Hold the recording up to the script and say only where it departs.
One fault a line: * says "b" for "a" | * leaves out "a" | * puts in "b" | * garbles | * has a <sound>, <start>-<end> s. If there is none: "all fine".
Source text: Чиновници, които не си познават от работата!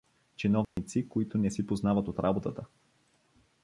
* has a dropout, 0.6-0.8 s